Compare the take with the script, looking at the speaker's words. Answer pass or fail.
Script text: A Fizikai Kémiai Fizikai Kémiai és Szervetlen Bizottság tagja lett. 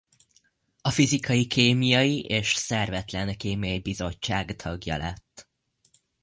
fail